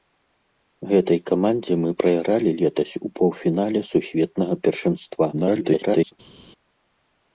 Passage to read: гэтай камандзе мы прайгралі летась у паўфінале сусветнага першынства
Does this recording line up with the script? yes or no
no